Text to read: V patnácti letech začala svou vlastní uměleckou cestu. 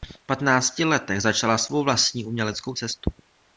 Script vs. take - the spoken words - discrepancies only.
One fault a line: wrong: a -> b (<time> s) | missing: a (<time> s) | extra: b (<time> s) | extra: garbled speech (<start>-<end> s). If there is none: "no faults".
no faults